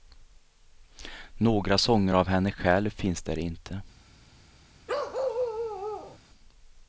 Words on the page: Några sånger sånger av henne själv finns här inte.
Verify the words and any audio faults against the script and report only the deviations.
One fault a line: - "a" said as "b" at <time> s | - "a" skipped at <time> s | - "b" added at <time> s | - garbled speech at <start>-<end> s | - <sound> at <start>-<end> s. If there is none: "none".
- "sånger" skipped at 2.1 s
- "här" said as "där" at 3.2 s
- bark at 4.9-6.2 s